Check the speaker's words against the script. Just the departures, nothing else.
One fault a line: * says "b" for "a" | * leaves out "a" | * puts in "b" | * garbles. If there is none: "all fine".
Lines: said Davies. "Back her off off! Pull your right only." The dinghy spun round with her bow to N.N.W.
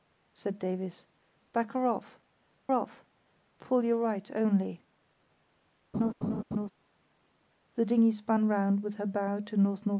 all fine